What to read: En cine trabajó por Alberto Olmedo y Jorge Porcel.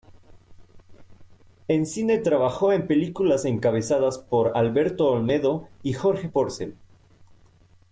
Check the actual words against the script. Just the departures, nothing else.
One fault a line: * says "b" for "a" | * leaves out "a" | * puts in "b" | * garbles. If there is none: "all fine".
* puts in "en películas encabezadas"